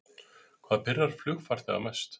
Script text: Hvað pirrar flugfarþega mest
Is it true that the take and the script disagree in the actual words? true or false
false